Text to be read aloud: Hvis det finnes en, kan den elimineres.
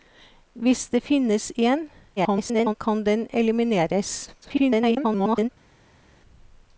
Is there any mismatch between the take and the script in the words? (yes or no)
yes